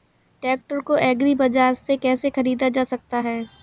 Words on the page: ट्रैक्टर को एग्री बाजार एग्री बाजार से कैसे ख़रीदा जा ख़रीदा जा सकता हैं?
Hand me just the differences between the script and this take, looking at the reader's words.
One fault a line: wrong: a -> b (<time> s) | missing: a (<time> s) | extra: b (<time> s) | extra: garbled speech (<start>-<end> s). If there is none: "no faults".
missing: एग्री बाजार (1.7 s)
missing: ख़रीदा जा (2.8 s)